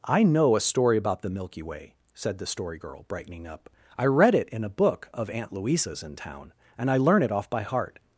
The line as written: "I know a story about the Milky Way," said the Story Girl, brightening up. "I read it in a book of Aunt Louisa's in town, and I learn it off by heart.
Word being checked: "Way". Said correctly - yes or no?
yes